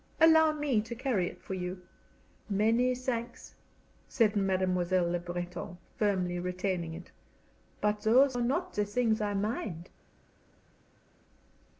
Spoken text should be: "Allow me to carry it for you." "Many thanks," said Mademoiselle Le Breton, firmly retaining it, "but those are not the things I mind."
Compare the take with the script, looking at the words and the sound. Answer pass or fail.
pass